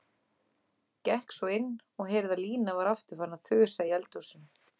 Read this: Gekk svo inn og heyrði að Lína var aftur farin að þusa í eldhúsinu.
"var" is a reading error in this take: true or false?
false